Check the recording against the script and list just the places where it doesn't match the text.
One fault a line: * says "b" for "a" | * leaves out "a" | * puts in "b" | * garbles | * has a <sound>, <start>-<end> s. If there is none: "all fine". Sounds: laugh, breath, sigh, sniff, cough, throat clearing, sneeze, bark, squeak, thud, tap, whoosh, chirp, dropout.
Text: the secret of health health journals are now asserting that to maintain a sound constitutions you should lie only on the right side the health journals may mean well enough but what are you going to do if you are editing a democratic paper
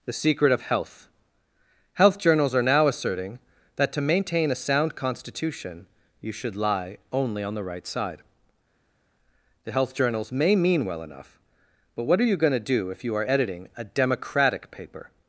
* says "constitution" for "constitutions"